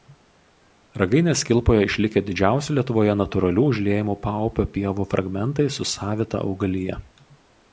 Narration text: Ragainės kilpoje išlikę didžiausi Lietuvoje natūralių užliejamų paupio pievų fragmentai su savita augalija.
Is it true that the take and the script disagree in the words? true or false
false